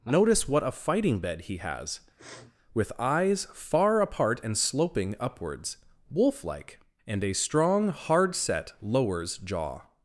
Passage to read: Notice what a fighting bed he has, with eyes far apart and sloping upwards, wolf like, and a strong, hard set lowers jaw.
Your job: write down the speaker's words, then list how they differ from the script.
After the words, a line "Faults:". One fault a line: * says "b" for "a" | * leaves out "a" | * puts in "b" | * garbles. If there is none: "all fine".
Notice what a fighting bed he has, with eyes far apart and sloping upwards, wolf like, and a strong, hard set lowers jaw.
Faults:
all fine